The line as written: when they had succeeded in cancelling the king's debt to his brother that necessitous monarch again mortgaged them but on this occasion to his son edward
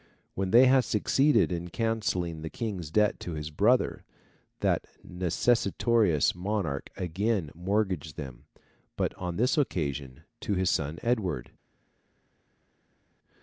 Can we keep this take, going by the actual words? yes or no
yes